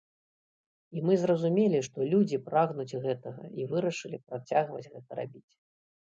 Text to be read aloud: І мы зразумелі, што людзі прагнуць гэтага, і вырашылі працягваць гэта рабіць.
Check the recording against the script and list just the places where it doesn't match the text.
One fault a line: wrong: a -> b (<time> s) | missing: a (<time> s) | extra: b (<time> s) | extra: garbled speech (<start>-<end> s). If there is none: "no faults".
no faults